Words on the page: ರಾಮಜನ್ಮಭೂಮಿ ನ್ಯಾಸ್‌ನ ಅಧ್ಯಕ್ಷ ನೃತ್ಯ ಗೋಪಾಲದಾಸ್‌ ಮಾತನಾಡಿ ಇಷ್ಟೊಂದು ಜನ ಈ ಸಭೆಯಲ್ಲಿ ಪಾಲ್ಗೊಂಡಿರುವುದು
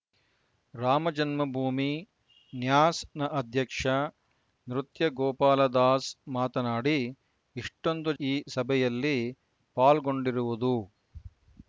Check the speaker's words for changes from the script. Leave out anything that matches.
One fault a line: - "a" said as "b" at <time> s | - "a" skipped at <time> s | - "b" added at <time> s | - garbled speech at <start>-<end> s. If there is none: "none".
- "ಜನ" skipped at 8.1 s